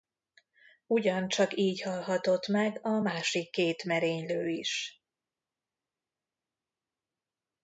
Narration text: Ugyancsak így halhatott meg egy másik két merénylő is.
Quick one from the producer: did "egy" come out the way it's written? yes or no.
no